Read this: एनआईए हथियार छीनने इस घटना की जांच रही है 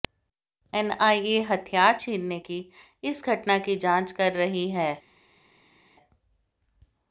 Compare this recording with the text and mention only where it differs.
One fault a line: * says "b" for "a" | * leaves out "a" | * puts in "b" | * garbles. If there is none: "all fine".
* puts in "की"
* puts in "कर"